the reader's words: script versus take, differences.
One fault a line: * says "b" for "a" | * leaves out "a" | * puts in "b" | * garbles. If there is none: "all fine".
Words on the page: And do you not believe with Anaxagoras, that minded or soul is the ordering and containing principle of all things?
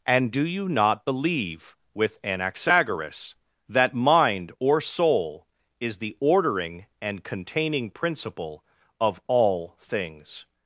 * says "mind" for "minded"